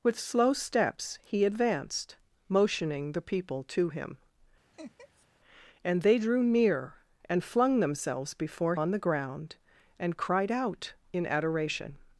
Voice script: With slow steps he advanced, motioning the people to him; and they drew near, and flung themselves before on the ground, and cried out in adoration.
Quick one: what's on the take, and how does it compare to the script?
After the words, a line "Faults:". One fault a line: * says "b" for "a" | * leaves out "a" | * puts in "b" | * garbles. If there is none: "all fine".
With slow steps he advanced, motioning the people to him; and they drew near, and flung themselves before on the ground, and cried out in adoration.
Faults:
all fine